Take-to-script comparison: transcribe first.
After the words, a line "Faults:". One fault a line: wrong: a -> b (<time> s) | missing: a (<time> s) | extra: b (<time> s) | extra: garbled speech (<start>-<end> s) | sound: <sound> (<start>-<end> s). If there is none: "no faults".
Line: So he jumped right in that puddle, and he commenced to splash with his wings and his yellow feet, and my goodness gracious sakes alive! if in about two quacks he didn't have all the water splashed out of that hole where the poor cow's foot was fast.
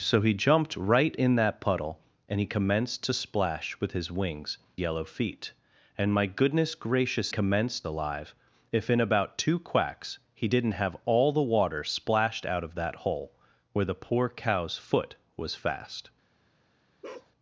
So he jumped right in that puddle, and he commenced to splash with his wings yellow feet, and my goodness gracious commenced alive! if in about two quacks he didn't have all the water splashed out of that hole where the poor cow's foot was fast.
Faults:
missing: and his (4.6 s)
wrong: sakes -> commenced (7.3 s)
sound: bark (17.0-17.3 s)